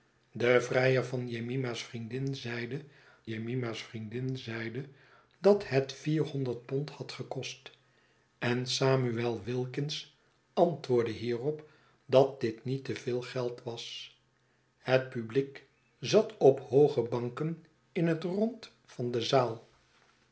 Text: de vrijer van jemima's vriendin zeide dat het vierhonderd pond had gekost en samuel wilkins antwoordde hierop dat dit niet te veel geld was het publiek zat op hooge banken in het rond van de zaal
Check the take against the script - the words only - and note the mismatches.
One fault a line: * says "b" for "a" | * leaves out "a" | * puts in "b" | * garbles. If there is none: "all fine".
* puts in "jemima's vriendin zeide"